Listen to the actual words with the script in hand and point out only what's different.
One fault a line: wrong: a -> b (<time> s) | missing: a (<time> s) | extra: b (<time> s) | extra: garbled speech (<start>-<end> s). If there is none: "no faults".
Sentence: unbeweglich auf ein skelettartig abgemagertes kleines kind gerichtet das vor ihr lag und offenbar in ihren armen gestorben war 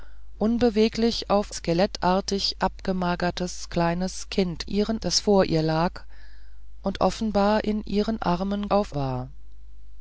missing: ein (1.6 s)
wrong: gerichtet -> ihren (4.6 s)
wrong: gestorben -> auf (8.7 s)